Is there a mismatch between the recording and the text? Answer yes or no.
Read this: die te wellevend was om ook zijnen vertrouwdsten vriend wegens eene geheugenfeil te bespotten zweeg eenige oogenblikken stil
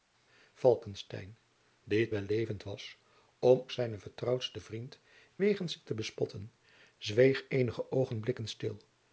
yes